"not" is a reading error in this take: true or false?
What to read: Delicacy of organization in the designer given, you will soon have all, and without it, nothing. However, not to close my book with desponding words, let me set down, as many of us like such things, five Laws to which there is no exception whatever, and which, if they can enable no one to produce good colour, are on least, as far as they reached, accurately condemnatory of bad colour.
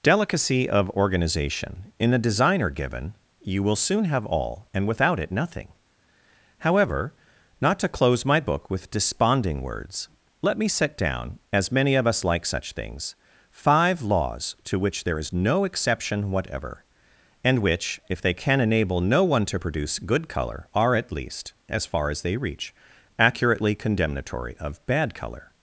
false